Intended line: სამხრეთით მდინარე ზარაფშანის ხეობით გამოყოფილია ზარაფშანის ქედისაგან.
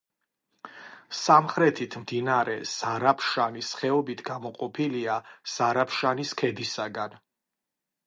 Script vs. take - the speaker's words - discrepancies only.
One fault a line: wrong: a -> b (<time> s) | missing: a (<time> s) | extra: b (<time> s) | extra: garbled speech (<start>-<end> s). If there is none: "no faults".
no faults